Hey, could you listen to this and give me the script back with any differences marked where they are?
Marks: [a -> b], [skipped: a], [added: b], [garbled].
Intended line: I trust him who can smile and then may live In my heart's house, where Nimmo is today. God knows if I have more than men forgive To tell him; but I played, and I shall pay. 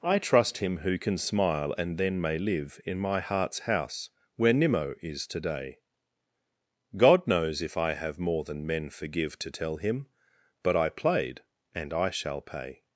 I trust him who can smile and then may live In my heart's house, where Nimmo is today. God knows if I have more than men forgive To tell him; but I played, and I shall pay.